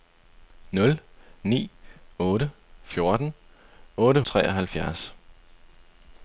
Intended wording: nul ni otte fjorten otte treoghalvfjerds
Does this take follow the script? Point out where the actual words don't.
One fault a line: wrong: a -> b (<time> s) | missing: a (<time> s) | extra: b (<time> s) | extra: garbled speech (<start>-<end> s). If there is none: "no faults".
no faults